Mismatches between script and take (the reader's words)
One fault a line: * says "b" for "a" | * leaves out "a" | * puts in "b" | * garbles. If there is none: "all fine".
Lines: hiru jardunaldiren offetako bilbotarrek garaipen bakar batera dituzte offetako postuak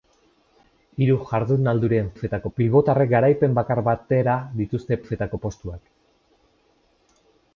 all fine